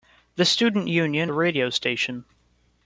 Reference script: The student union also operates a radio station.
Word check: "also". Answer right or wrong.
wrong